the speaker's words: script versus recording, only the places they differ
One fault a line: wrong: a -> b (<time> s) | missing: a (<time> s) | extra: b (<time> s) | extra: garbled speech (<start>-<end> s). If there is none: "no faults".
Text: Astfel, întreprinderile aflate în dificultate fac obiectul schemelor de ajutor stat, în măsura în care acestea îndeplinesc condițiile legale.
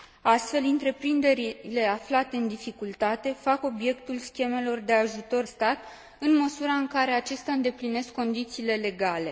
no faults